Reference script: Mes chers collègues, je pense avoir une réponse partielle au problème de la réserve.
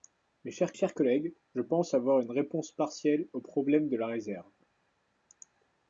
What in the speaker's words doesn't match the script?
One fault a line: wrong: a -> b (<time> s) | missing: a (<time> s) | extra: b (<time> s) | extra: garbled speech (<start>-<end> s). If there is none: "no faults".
extra: chers (0.7 s)